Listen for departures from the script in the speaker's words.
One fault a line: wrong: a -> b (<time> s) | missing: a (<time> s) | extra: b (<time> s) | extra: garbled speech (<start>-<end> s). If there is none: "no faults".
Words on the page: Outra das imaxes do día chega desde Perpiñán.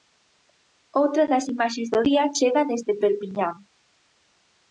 no faults